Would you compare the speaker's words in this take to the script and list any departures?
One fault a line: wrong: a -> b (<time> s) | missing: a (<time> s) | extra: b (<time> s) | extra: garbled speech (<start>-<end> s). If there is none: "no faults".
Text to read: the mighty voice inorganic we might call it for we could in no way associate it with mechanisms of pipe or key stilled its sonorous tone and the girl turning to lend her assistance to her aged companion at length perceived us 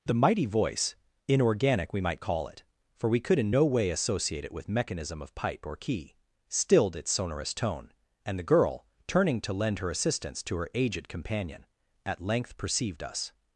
wrong: mechanisms -> mechanism (4.7 s)